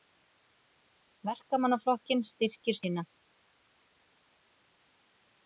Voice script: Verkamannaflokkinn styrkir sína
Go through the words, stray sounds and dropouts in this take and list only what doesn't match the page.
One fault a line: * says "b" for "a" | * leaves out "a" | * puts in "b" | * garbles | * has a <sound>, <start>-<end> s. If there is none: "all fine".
all fine